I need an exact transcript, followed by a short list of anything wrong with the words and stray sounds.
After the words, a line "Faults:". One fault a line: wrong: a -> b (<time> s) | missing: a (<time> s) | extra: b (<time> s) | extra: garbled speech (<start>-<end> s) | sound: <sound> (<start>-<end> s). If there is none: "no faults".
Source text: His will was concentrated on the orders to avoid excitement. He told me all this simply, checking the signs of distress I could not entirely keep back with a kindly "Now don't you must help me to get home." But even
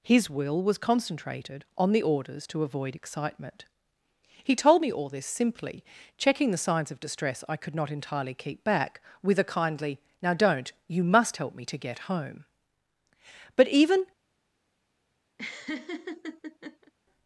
His will was concentrated on the orders to avoid excitement. He told me all this simply, checking the signs of distress I could not entirely keep back with a kindly "Now don't you must help me to get home." But even
Faults:
sound: laugh (15.4-16.9 s)